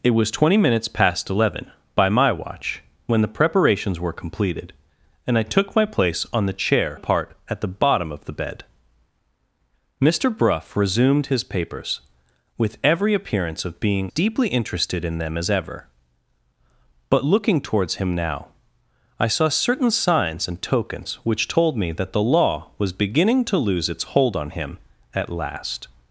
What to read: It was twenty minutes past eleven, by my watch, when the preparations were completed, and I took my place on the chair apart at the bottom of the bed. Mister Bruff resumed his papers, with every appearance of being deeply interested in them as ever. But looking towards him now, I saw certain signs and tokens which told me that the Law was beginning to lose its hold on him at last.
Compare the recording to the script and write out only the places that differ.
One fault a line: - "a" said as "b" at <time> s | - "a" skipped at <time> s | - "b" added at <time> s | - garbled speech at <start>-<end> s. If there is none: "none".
none